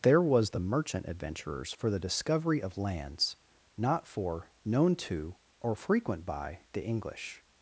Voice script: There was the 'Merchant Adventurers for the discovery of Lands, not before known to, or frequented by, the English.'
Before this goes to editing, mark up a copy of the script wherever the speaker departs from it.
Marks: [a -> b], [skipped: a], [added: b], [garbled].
There was the 'Merchant Adventurers for the discovery of Lands, not [before -> for] known to, or [frequented -> frequent] by, the English.'